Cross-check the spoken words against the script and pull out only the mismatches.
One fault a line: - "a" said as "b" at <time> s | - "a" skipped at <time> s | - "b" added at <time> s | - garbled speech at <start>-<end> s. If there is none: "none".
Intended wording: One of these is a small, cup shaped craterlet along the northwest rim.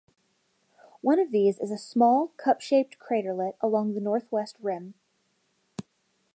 none